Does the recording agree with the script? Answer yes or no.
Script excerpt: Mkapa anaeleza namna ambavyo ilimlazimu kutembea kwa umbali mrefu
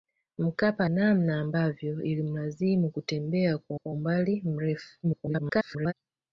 no